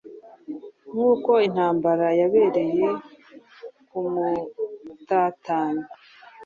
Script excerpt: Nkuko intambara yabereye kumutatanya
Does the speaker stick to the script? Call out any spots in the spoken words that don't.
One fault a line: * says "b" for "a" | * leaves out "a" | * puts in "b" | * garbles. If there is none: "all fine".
all fine